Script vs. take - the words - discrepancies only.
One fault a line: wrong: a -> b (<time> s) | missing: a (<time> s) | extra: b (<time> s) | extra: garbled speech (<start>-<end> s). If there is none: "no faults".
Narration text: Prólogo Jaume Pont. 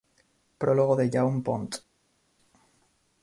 extra: de (0.9 s)